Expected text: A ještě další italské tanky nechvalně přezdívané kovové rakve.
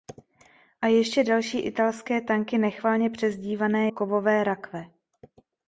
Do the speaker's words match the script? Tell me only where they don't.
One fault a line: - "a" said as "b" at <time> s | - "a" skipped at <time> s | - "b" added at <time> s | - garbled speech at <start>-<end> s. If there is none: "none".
none